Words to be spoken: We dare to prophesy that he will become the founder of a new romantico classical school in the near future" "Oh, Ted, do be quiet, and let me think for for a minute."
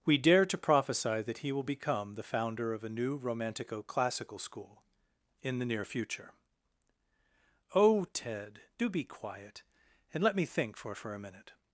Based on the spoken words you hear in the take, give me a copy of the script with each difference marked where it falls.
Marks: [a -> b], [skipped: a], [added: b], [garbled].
We dare to prophesy that he will become the founder of a new romantico classical school in the near future" "Oh, Ted, do be quiet, and let me think for for a minute."